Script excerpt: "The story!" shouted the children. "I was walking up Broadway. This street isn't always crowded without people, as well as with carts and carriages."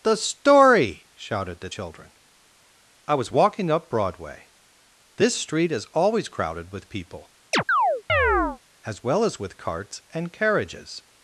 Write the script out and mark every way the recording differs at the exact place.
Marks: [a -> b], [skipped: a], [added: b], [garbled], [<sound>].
"The story!" shouted the children. "I was walking up Broadway. This street [isn't -> is] always crowded [without -> with] people, [chirp] as well as with carts and carriages."